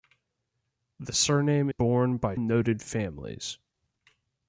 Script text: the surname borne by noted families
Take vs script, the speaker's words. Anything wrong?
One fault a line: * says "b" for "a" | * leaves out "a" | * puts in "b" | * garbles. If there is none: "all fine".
all fine